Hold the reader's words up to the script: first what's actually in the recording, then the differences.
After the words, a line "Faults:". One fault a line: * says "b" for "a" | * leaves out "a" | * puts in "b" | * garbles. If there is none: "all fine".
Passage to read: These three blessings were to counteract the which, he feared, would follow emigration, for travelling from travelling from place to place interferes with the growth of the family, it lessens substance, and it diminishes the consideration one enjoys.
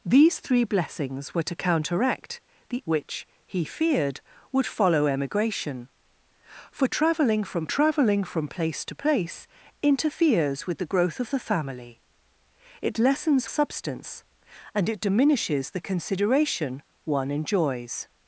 These three blessings were to counteract the which, he feared, would follow emigration, for travelling from travelling from place to place interferes with the growth of the family, it lessens substance, and it diminishes the consideration one enjoys.
Faults:
all fine